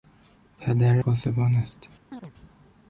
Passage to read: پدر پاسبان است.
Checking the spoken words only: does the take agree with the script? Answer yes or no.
yes